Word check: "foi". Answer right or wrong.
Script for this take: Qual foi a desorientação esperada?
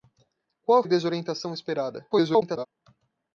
wrong